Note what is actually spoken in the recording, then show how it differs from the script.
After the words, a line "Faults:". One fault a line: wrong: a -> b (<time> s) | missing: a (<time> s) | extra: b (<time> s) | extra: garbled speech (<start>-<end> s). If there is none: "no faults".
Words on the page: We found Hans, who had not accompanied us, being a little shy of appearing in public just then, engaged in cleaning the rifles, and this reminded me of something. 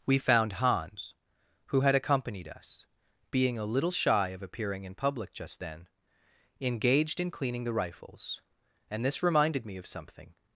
We found Hans, who had accompanied us, being a little shy of appearing in public just then, engaged in cleaning the rifles, and this reminded me of something.
Faults:
missing: not (1.9 s)